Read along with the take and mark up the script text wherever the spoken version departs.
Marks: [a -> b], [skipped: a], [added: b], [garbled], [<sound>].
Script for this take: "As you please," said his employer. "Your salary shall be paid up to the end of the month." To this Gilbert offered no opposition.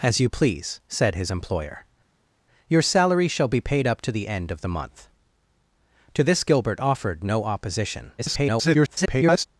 "As you please," said his employer. "Your salary shall be paid up to the end of the month." To this Gilbert offered no opposition. [garbled]